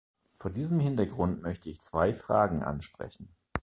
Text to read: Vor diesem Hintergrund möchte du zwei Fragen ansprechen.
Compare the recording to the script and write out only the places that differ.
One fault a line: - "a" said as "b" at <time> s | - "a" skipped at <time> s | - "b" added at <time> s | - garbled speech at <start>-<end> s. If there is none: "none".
- "du" said as "ich" at 1.7 s